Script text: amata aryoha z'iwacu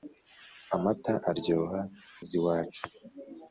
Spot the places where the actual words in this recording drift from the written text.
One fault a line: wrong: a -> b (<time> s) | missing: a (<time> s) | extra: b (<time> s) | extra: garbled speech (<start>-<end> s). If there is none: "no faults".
no faults